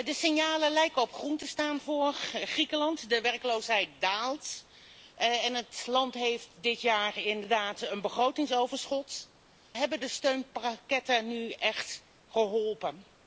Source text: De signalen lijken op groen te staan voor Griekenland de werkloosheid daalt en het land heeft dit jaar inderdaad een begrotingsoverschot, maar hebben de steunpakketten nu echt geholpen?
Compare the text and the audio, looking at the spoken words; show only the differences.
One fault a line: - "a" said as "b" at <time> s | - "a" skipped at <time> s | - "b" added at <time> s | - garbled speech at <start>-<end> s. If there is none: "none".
- "maar" skipped at 9.3 s